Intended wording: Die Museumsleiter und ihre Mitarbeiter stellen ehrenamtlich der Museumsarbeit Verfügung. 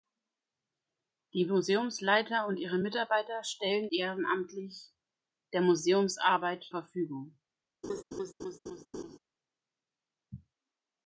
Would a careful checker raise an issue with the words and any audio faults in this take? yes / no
yes